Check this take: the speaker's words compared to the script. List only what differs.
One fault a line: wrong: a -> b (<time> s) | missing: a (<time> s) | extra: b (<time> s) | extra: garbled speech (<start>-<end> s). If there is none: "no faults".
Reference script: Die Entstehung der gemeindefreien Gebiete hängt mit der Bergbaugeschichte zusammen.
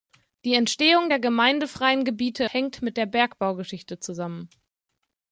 no faults